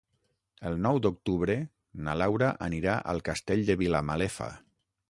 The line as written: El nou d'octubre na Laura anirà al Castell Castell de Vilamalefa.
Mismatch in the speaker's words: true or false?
true